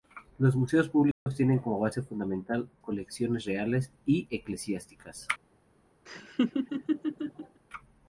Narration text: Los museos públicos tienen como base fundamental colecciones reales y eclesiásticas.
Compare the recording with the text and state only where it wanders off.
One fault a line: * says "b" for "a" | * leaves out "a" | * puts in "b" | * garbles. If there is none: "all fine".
all fine